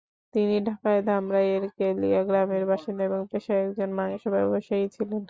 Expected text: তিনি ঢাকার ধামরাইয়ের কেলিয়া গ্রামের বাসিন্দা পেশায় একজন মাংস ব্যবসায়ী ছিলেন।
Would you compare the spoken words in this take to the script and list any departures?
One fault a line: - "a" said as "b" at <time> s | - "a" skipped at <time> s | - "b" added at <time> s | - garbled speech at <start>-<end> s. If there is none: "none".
- "এবং" added at 3.0 s